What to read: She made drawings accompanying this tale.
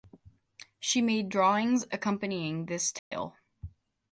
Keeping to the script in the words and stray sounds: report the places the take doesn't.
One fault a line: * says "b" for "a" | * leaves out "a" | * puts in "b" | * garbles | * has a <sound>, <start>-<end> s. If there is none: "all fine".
* has a dropout, 3.0-3.1 s